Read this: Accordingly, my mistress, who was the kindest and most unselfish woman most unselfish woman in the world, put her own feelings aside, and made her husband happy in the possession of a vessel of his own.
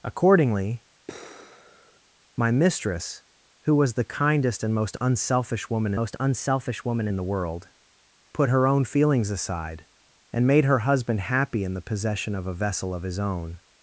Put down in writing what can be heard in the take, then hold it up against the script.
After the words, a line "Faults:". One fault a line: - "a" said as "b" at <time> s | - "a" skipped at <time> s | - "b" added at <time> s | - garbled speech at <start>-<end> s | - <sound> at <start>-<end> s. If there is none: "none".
Accordingly, my mistress, who was the kindest and most unselfish woman most unselfish woman in the world, put her own feelings aside, and made her husband happy in the possession of a vessel of his own.
Faults:
- sigh at 1.1-2.0 s